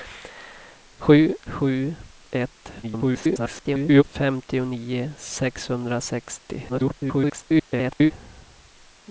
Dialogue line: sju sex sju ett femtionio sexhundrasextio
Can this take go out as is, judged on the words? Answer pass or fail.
fail